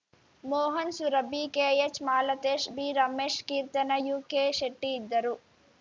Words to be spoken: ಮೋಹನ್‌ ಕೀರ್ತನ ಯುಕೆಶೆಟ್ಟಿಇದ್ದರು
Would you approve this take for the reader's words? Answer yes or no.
no